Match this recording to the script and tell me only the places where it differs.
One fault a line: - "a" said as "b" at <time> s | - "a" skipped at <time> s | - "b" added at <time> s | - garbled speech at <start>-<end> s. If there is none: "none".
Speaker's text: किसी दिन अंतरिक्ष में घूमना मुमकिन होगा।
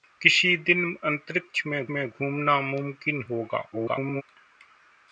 - "में" added at 1.9 s
- garbled speech at 3.7-4.2 s